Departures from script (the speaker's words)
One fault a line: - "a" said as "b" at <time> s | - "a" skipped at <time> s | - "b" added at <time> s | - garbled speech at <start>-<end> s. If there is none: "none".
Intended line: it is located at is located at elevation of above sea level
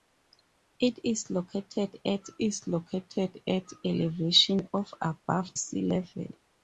none